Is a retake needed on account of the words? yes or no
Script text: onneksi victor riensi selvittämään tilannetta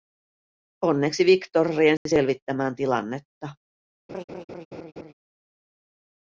no